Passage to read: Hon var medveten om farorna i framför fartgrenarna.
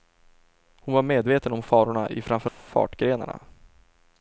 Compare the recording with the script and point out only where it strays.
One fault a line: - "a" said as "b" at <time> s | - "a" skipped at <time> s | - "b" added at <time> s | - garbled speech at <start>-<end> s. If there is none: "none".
none